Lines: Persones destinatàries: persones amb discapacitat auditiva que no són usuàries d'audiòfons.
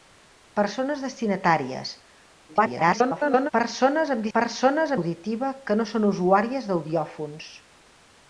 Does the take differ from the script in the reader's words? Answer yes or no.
yes